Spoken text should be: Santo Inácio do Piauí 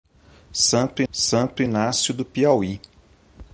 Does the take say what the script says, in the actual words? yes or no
no